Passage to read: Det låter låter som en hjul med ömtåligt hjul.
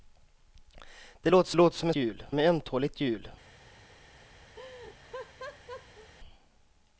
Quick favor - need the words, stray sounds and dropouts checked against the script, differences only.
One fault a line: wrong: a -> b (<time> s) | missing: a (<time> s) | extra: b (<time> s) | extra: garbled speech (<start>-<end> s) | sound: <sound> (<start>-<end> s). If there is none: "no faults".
sound: laugh (4.6-6.1 s)